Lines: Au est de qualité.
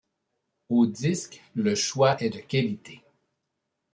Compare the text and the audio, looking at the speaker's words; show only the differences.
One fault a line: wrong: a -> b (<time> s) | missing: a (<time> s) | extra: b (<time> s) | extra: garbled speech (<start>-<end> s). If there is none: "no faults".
extra: disque le choix (0.9 s)